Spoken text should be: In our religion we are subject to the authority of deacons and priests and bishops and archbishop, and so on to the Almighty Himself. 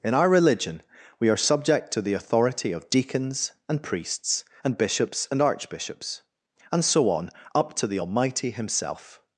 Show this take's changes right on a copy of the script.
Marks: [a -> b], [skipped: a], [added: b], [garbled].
In our religion we are subject to the authority of deacons and priests and bishops and [archbishop, -> archbishops] and so on [added: up] to the Almighty Himself.